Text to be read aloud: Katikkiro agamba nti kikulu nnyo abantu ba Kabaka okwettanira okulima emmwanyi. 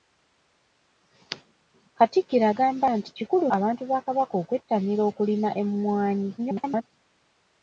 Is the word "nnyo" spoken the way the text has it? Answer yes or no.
no